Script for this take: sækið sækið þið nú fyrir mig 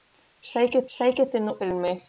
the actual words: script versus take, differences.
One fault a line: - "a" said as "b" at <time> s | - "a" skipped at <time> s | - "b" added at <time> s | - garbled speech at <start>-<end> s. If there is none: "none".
none